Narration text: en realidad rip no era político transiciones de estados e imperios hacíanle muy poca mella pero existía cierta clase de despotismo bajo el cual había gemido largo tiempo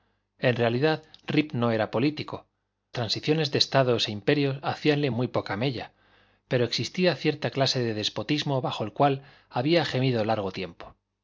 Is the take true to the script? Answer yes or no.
yes